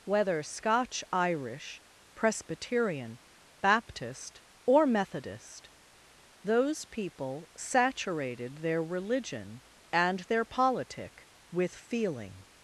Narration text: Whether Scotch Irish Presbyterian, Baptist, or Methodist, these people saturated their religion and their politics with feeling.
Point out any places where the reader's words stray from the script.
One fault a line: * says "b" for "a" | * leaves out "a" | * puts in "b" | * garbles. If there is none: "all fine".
* says "those" for "these"
* says "politic" for "politics"